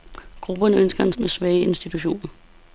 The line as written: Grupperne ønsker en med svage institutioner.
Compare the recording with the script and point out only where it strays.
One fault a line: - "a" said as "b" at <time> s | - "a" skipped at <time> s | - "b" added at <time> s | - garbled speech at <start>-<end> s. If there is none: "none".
none